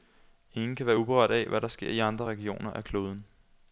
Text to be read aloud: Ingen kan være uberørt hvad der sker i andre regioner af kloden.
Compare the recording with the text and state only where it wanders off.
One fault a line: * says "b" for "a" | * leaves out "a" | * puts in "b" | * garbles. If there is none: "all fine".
* puts in "af"